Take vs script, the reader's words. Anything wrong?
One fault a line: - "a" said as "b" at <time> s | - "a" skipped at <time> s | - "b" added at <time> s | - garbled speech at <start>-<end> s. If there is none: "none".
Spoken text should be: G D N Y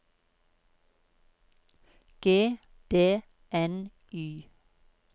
none